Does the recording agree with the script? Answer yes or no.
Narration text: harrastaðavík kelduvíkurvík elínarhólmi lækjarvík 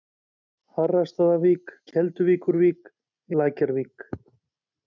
no